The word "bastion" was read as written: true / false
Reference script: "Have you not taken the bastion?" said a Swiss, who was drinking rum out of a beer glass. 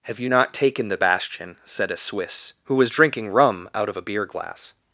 true